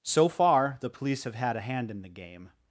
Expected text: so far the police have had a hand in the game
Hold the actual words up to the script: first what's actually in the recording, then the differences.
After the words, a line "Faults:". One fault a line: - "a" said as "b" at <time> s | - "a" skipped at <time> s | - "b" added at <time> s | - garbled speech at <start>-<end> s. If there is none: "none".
so far the police have had a hand in the game
Faults:
none